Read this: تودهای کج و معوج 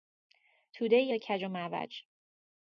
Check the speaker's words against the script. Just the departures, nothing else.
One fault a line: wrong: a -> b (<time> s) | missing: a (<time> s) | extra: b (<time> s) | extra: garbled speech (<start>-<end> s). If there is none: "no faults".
no faults